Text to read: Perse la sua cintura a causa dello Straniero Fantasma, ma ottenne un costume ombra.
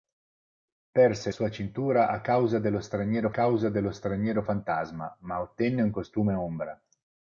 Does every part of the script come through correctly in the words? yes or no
no